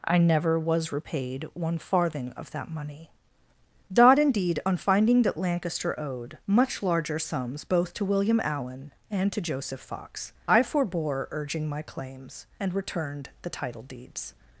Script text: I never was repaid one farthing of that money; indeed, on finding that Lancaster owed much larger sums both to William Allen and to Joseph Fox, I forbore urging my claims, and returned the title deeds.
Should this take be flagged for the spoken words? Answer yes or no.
yes